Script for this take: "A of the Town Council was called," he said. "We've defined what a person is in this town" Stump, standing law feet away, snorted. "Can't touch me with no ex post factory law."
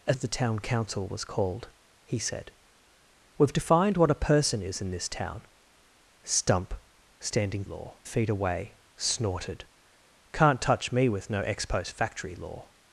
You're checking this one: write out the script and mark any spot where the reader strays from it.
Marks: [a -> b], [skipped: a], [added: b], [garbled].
"A of the Town Council was called," he said. "We've defined what a person is in this town" Stump, standing law feet away, snorted. "Can't touch me with no ex post factory law."